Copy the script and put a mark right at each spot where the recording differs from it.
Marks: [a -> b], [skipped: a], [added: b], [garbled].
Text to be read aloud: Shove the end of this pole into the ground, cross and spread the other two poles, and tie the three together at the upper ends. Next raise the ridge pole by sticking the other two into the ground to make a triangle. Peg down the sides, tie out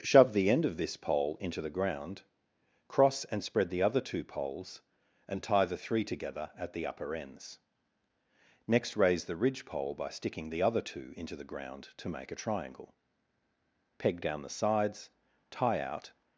Shove the end of this pole into the ground, cross and spread the other two poles, and tie the three together at the upper ends. Next raise the ridge pole by sticking the other two into the ground to make a triangle. Peg down the sides, tie out